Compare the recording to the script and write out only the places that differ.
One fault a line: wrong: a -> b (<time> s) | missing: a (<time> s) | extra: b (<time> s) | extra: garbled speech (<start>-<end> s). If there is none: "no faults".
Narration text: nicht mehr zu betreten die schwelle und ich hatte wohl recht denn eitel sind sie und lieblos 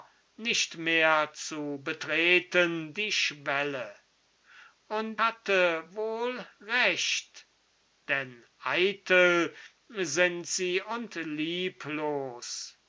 missing: ich (5.2 s)